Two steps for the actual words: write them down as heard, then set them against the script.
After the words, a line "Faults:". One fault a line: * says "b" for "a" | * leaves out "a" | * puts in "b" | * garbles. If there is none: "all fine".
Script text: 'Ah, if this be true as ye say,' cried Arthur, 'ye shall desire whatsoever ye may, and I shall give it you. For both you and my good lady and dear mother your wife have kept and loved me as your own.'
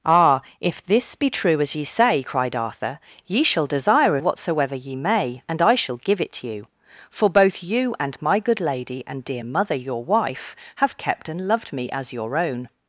'Ah, if this be true as ye say,' cried Arthur, 'ye shall desire whatsoever ye may, and I shall give it you. For both you and my good lady and dear mother your wife have kept and loved me as your own.'
Faults:
all fine